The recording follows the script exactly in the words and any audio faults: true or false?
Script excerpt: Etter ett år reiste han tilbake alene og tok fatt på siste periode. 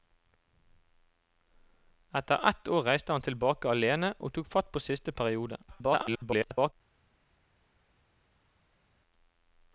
false